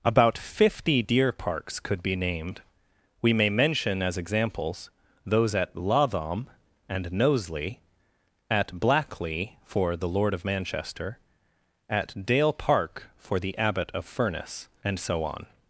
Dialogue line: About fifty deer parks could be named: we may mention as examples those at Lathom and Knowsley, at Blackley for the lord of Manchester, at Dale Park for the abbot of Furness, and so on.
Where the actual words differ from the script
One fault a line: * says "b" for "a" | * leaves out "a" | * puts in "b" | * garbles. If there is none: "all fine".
all fine